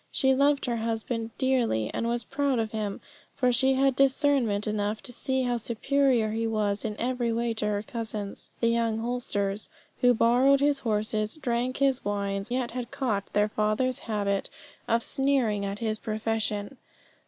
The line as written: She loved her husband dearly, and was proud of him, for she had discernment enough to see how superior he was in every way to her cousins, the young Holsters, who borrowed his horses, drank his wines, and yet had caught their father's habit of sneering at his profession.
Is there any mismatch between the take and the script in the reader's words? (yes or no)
yes